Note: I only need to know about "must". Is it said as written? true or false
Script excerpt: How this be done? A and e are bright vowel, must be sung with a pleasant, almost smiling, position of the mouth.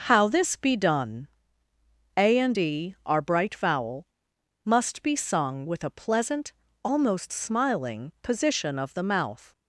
true